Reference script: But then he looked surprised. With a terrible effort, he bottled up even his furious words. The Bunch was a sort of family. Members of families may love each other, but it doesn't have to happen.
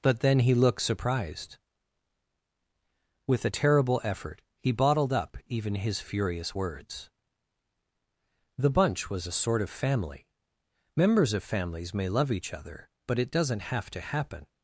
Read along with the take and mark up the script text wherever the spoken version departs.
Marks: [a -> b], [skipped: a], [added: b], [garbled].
But then he looked surprised. With a terrible effort, he bottled up even his furious words. The Bunch was a sort of family. Members of families may love each other, but it doesn't have to happen.